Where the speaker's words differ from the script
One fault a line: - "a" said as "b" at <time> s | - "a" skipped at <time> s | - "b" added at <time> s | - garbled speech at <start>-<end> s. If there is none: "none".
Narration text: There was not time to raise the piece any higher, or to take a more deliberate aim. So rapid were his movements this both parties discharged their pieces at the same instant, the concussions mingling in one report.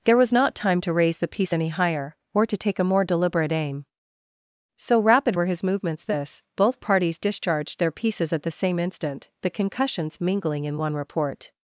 none